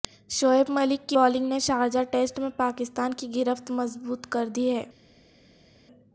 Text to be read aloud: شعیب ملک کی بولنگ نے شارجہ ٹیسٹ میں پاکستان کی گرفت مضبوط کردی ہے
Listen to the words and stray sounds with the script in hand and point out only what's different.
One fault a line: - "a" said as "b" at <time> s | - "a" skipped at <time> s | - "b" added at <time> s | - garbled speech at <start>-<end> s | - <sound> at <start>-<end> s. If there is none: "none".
none